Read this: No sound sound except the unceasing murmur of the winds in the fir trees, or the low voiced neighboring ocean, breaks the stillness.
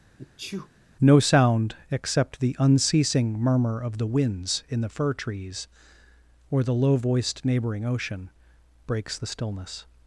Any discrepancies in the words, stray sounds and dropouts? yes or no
yes